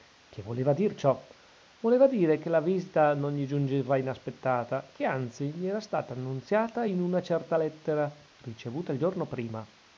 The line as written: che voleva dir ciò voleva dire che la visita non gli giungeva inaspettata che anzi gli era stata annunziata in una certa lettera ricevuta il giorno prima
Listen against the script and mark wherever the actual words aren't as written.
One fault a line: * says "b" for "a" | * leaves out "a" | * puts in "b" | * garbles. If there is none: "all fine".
all fine